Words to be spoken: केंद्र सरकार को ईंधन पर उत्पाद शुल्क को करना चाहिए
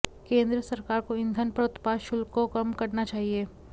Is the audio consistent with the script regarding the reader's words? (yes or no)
no